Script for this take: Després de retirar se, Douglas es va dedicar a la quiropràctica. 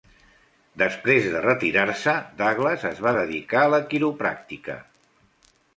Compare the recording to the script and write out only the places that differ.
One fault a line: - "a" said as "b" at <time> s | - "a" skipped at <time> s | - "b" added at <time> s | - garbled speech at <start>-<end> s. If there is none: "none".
none